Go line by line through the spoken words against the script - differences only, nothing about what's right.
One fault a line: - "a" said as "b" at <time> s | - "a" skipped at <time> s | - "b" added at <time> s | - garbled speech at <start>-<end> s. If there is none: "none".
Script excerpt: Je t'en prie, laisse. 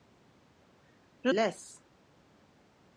- "t'en prie" skipped at 1.3 s